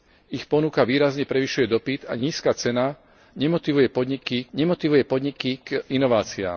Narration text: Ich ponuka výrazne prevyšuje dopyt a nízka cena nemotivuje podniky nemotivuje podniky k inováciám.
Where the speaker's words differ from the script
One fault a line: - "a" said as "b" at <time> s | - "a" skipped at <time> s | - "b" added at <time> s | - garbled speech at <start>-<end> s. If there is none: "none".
none